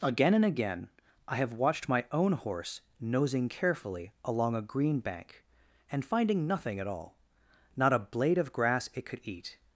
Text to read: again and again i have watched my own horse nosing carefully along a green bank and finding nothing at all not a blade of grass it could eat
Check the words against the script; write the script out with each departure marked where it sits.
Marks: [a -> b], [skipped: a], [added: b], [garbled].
again and again i have watched my own horse nosing carefully along a green bank and finding nothing at all not a blade of grass it could eat